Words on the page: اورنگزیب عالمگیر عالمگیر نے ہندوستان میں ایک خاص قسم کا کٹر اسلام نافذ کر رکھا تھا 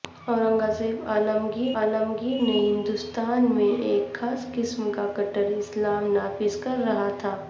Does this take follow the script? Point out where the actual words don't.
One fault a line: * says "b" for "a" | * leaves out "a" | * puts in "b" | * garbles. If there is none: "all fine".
all fine